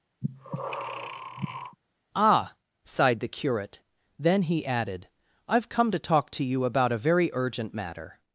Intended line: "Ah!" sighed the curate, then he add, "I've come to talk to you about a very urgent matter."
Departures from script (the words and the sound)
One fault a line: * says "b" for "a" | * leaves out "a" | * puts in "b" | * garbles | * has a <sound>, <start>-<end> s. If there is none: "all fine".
* has a breath, 0.2-1.8 s
* says "added" for "add"